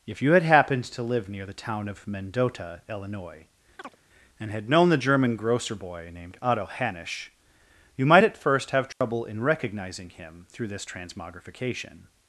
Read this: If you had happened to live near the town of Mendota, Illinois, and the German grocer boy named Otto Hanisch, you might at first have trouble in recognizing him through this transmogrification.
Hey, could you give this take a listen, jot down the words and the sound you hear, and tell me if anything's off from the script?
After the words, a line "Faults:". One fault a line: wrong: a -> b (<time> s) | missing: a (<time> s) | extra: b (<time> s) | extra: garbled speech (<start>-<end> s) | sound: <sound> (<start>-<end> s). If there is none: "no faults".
If you had happened to live near the town of Mendota, Illinois, and had known the German grocer boy named Otto Hanisch, you might at first have trouble in recognizing him through this transmogrification.
Faults:
sound: chirp (3.8-4.0 s)
extra: had known (4.5 s)
sound: dropout (8.9-9.0 s)